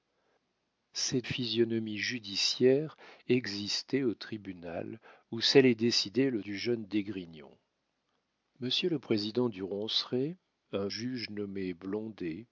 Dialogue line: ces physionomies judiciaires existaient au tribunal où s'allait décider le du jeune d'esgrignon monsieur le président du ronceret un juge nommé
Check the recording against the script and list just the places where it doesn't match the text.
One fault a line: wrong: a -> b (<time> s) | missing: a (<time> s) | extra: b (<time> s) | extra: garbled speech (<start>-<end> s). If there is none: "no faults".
no faults